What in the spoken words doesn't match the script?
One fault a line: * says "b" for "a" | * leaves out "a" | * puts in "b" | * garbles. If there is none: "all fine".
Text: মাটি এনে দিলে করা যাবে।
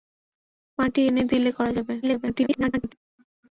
* garbles